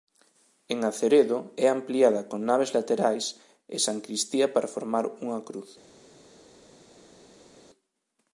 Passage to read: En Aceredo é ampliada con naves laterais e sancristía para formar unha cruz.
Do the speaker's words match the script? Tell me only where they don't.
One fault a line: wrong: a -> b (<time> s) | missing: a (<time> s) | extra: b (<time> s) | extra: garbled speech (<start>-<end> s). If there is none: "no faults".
no faults